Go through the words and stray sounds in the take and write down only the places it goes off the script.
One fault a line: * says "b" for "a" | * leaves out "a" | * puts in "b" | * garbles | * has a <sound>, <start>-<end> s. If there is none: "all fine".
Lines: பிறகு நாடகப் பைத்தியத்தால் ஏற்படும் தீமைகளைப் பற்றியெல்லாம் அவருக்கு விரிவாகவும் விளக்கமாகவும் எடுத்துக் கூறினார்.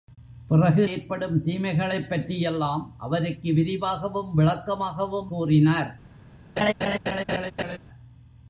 * leaves out "நாடகப் பைத்தியத்தால்"
* leaves out "எடுத்துக்"
* has a laugh, 6.6-7.8 s